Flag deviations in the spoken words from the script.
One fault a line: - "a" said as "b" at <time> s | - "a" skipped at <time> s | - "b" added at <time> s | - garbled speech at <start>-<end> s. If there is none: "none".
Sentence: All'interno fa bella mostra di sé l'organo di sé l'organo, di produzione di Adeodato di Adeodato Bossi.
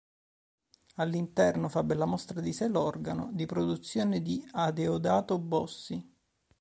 - "sé l'organo di" skipped at 3.5 s
- "di Adeodato" skipped at 5.4 s